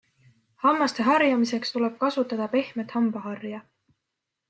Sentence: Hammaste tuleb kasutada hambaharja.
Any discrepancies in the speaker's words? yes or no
yes